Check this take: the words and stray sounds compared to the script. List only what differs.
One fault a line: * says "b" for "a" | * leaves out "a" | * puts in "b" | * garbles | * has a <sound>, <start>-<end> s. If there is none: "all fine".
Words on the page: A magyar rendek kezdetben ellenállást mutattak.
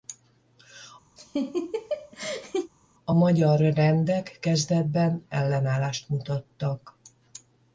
* has a laugh, 1.2-2.7 s